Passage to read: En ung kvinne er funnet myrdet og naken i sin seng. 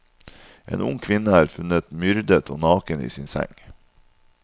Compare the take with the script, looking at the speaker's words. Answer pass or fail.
pass